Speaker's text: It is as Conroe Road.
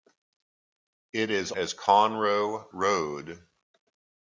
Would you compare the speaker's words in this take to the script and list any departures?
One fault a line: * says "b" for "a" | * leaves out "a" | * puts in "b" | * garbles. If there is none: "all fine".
all fine